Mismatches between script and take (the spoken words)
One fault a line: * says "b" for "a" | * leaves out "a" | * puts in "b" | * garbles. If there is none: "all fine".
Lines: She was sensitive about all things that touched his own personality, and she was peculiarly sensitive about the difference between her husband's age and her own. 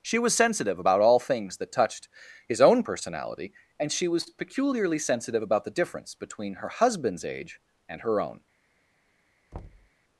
all fine